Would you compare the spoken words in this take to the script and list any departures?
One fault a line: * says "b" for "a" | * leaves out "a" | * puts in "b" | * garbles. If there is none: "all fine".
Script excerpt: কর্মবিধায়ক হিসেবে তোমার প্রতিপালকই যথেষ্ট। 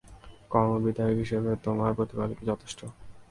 all fine